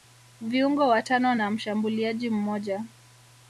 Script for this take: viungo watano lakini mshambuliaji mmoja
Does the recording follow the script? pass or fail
fail